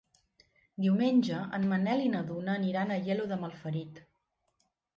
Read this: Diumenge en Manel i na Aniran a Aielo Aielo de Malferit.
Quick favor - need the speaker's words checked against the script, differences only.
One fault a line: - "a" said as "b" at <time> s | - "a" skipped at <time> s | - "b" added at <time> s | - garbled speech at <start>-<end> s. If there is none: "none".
- "Duna" added at 2.3 s
- "Aielo" skipped at 3.3 s